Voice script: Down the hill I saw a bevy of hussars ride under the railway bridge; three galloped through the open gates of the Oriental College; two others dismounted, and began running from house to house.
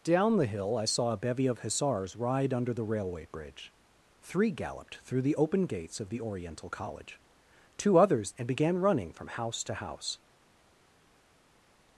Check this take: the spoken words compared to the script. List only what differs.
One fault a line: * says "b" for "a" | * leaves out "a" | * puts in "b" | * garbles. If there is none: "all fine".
* leaves out "dismounted"